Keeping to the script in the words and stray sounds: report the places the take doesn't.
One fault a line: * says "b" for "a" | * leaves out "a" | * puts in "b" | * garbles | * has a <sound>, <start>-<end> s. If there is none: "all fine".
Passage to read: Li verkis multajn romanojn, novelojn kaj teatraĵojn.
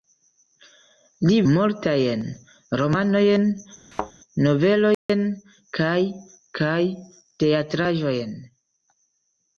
* leaves out "verkis"
* has a thud, 3.9-4.1 s
* has a dropout, 4.9-5.1 s
* puts in "kaj"